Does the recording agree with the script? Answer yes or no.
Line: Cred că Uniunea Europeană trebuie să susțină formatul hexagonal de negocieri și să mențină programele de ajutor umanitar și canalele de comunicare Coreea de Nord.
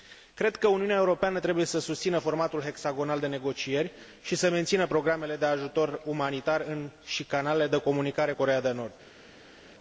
yes